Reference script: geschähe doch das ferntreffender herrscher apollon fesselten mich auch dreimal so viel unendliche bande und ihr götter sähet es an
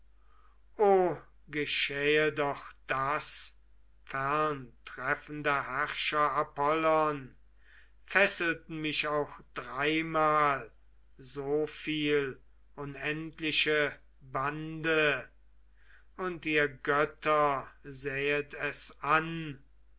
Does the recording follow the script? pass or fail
pass